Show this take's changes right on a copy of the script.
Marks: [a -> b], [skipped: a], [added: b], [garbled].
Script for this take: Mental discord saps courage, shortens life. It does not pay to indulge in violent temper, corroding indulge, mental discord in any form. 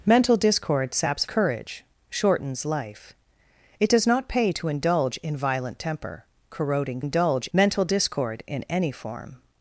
Mental discord saps courage, shortens life. It does not pay to indulge in violent temper, corroding indulge, mental discord in any form.